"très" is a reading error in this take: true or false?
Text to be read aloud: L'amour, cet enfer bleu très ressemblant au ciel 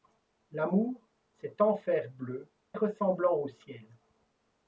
true